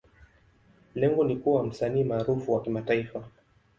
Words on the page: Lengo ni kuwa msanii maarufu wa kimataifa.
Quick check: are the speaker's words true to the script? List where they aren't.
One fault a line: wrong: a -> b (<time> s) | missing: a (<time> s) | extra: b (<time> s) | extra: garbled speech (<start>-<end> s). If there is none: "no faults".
no faults